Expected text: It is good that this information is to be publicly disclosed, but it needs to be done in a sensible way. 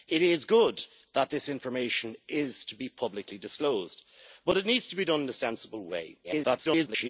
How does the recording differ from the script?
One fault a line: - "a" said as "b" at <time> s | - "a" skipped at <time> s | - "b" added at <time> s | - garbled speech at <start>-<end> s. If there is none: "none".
- garbled speech at 6.2-7.1 s